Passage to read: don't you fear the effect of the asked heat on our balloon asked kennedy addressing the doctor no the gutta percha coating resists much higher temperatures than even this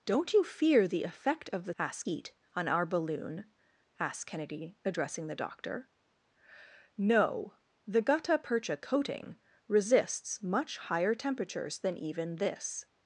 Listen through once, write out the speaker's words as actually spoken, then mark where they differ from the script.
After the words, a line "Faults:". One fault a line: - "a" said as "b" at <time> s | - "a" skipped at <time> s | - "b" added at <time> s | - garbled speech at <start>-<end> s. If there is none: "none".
don't you fear the effect of the asked heat on our balloon asked kennedy addressing the doctor no the gutta percha coating resists much higher temperatures than even this
Faults:
none